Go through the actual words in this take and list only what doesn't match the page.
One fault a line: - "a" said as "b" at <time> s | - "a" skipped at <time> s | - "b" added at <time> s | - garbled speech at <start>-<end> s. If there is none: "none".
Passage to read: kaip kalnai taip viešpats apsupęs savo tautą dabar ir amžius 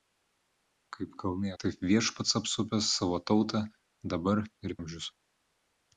none